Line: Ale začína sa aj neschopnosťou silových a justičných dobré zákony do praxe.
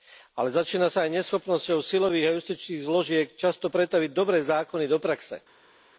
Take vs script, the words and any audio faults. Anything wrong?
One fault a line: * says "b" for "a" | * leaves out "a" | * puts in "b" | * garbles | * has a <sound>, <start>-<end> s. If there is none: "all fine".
* puts in "zložiek často pretaviť"